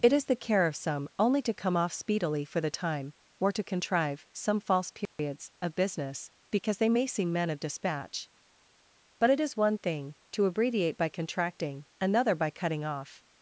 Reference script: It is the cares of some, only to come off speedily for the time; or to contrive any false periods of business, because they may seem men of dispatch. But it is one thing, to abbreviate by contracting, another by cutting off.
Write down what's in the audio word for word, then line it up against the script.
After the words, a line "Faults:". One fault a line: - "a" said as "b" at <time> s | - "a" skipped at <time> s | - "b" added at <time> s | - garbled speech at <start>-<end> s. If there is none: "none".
It is the care of some, only to come off speedily for the time; or to contrive some false periods of business, because they may seem men of dispatch. But it is one thing, to abbreviate by contracting, another by cutting off.
Faults:
- "cares" said as "care" at 0.3 s
- "any" said as "some" at 4.3 s